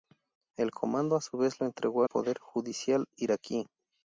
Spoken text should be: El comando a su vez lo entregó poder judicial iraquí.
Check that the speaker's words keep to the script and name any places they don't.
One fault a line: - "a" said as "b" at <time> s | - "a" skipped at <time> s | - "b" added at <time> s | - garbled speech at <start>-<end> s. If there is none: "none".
none